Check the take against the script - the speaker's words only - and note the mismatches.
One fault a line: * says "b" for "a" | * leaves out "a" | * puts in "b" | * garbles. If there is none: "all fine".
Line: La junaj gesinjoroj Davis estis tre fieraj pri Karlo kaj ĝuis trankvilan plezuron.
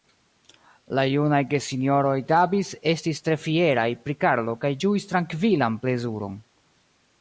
all fine